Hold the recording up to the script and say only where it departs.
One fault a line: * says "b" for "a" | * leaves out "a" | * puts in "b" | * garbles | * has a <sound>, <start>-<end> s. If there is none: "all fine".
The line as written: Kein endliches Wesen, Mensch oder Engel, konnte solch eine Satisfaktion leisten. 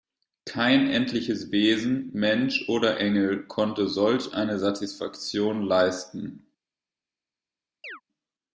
* has a chirp, 7.8-8.0 s